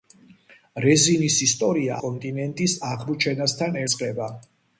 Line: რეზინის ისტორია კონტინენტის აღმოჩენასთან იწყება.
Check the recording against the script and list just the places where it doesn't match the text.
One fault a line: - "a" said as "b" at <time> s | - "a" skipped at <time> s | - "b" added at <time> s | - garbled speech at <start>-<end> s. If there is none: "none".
none